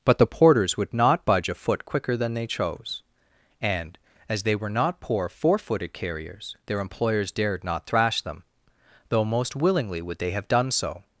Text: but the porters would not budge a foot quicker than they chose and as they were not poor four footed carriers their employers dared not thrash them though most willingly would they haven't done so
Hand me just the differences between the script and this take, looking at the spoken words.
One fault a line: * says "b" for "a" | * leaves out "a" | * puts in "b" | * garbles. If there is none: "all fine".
* says "have" for "haven't"